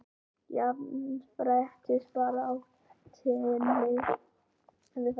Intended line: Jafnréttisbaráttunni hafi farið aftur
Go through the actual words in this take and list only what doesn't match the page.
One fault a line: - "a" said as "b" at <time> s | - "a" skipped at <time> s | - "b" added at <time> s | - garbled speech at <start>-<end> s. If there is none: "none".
none